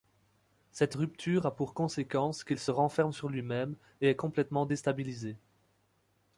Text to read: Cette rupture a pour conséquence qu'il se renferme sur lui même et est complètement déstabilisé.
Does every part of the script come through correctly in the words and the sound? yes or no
yes